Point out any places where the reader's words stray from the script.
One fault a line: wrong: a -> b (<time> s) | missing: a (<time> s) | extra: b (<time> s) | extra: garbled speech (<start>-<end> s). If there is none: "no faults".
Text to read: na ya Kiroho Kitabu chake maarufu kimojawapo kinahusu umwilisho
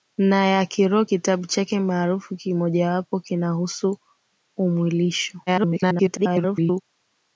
extra: garbled speech (5.5-6.8 s)